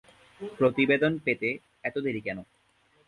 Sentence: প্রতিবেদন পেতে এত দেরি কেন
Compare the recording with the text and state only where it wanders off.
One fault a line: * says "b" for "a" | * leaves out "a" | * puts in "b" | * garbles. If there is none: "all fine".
all fine